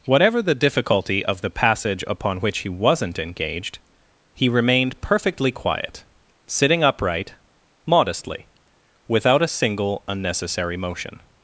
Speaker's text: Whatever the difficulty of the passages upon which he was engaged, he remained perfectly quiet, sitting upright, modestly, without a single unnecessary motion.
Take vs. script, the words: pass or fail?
fail